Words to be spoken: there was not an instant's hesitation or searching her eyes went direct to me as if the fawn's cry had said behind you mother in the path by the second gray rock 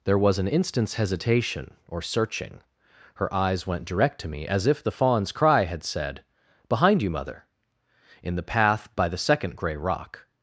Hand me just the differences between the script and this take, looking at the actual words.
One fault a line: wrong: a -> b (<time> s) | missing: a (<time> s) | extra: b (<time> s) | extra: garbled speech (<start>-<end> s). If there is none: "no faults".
missing: not (0.4 s)